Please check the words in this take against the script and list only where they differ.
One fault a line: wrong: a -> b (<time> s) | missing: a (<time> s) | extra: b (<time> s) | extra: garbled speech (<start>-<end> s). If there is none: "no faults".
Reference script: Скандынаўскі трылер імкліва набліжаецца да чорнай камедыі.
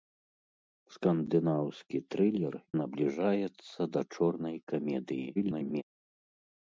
missing: імкліва (2.5 s)
extra: garbled speech (5.4-5.8 s)